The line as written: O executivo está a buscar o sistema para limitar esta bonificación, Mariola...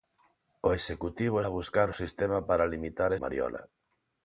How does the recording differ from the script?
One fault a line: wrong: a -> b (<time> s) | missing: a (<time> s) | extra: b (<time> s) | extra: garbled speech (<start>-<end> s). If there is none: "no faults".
missing: está (1.4 s)
missing: esta bonificación (3.1 s)